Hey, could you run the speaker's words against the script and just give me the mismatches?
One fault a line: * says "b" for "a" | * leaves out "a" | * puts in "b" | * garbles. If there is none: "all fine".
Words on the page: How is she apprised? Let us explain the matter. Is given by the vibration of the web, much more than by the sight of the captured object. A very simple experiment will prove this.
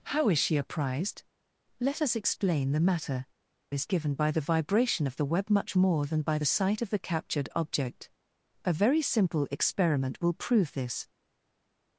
all fine